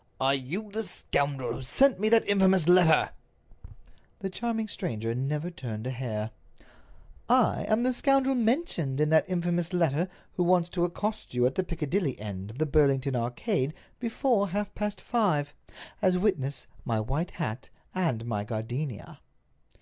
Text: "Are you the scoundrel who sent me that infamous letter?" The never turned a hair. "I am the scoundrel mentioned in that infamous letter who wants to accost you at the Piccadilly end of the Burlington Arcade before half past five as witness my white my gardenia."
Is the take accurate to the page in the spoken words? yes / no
no